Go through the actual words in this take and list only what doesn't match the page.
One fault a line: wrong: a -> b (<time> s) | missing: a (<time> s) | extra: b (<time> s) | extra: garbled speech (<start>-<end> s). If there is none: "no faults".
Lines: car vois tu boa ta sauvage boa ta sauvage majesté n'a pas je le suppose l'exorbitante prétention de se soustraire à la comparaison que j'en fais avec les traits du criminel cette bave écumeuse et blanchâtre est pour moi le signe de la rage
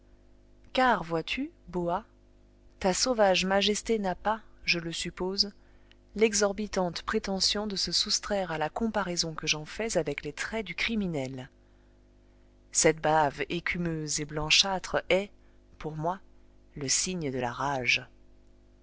missing: boa ta sauvage (3.5 s)